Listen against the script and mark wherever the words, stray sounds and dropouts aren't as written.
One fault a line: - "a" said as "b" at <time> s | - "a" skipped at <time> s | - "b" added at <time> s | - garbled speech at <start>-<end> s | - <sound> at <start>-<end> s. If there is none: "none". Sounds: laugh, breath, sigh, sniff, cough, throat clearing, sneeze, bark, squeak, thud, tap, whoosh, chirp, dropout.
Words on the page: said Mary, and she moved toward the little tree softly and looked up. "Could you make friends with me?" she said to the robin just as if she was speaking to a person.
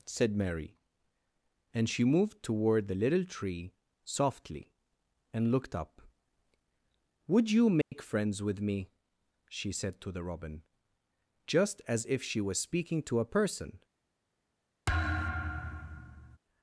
- "Could" said as "Would" at 7.3 s
- dropout at 7.8-7.9 s
- thud at 14.9-16.4 s